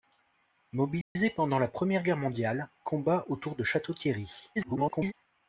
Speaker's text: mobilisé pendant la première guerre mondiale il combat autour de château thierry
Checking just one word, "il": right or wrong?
wrong